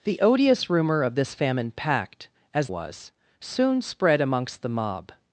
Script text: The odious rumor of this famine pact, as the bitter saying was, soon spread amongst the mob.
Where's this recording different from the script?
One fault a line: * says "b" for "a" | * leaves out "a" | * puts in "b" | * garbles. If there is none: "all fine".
* leaves out "the bitter saying"